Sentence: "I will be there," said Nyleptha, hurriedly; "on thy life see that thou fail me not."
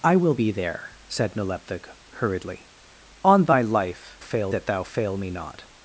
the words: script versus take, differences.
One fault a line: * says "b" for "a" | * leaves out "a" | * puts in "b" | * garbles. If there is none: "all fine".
* says "fail" for "see"